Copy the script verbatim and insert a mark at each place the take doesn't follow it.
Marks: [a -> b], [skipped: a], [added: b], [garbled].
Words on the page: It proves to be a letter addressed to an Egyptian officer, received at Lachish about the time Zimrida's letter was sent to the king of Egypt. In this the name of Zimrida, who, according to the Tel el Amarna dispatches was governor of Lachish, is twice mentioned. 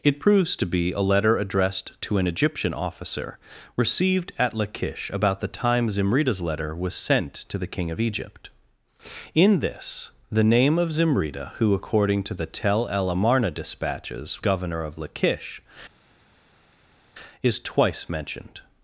It proves to be a letter addressed to an Egyptian officer, received at Lachish about the time Zimrida's letter was sent to the king of Egypt. In this the name of Zimrida, who, according to the Tel el Amarna dispatches [skipped: was] governor of Lachish, is twice mentioned.